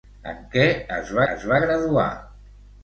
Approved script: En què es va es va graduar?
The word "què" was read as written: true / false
true